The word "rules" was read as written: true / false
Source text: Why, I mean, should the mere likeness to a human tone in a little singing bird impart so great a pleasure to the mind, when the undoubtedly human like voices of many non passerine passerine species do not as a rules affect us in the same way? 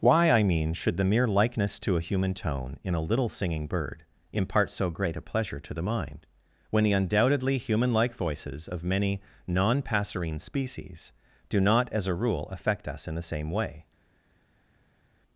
false